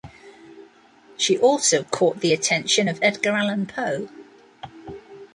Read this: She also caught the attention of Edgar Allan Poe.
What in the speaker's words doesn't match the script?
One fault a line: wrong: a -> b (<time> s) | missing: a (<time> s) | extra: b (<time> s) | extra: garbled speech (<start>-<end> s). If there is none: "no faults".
no faults